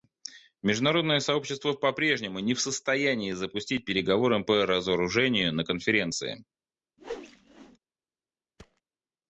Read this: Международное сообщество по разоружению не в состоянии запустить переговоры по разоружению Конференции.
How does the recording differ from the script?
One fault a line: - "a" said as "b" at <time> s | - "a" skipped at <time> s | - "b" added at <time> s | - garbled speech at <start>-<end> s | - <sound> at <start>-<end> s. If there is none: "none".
- "разоружению" said as "прежнему" at 1.9 s
- "на" added at 5.5 s
- whoosh at 7.0-7.8 s
- thud at 8.6-8.8 s